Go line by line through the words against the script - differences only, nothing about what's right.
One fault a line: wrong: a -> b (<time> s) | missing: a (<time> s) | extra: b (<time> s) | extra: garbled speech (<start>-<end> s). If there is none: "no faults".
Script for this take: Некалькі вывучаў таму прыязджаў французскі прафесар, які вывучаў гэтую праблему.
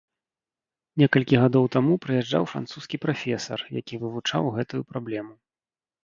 wrong: вывучаў -> гадоў (1.4 s)